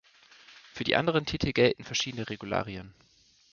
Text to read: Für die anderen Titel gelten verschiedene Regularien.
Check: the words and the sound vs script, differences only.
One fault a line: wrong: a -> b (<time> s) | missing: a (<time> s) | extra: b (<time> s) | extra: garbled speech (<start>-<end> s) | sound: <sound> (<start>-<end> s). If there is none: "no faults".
no faults